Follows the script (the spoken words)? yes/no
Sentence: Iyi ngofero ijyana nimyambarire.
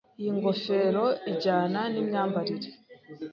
yes